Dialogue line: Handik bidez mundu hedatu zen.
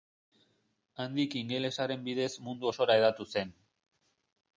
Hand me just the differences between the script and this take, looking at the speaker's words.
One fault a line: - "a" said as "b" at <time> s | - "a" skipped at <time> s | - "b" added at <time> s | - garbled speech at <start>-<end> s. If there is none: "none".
- "ingelesaren" added at 1.4 s
- "osora" added at 2.7 s